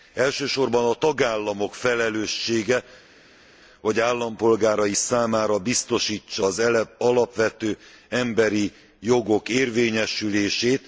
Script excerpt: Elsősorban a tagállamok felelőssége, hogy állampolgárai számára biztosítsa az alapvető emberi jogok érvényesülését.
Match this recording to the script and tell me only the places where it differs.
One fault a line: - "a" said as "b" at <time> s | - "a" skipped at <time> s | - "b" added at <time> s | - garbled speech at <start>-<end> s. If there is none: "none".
none